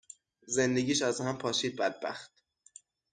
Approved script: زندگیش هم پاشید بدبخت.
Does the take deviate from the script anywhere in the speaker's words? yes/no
yes